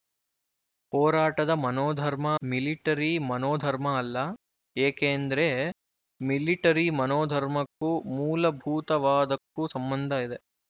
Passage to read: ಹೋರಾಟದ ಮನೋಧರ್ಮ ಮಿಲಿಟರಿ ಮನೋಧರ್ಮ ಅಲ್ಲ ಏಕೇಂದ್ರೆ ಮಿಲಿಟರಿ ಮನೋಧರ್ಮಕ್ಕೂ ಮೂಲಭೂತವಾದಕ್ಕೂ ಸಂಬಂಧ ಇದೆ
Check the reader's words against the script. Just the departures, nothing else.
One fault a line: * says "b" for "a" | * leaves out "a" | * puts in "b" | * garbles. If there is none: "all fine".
all fine